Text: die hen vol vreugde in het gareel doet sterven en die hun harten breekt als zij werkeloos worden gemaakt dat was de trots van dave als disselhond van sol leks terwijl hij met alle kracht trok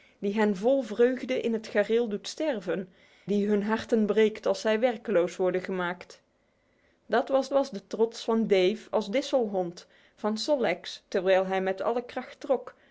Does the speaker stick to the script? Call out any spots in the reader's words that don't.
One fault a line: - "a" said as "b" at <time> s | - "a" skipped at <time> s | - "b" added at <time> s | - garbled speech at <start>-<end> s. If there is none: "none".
- "en" skipped at 2.9 s
- "was" added at 7.5 s